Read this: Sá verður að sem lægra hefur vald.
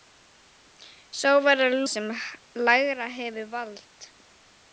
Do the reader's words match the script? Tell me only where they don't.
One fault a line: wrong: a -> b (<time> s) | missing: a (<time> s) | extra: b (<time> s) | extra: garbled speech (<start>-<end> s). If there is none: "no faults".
no faults